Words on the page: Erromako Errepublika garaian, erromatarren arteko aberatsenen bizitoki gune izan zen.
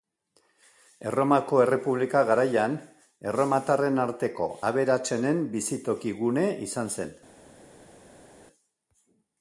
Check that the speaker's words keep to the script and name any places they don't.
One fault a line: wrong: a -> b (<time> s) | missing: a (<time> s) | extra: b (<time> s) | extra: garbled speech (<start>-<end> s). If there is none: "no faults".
no faults